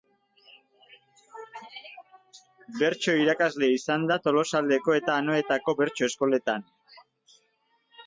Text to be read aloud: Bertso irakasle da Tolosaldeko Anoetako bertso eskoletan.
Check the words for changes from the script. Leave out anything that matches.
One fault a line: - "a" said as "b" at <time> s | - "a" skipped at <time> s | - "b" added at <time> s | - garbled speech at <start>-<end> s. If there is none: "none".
- "izan" added at 3.8 s
- "eta" added at 5.0 s